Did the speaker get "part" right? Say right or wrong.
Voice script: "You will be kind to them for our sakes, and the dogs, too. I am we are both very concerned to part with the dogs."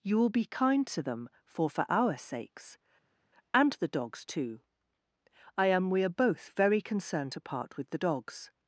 right